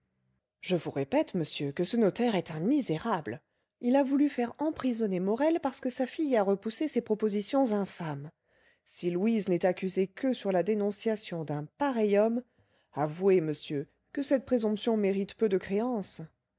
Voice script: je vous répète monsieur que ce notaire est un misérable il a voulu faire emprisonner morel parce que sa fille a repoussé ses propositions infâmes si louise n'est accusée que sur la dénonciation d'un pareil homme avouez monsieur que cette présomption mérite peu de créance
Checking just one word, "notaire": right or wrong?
right